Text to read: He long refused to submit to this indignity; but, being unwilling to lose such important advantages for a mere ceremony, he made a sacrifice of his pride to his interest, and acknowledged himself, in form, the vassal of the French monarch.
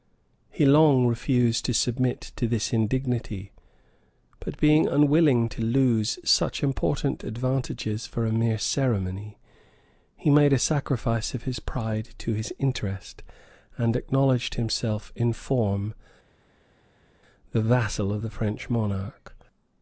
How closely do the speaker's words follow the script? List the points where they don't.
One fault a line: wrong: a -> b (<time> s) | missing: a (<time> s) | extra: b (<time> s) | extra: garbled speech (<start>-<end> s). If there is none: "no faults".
no faults